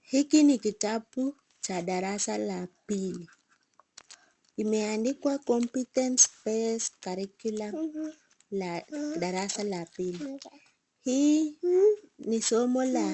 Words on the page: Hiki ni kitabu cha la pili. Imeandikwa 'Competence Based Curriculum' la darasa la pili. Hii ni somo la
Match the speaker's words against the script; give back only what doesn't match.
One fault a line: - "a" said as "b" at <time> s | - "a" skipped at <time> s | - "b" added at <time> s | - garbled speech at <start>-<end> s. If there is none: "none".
- "darasa" added at 1.8 s